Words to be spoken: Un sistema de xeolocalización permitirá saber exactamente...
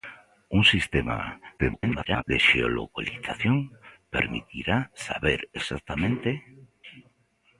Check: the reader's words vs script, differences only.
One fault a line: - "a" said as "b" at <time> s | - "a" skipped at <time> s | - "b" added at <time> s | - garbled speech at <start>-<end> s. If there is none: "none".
- garbled speech at 1.6-2.2 s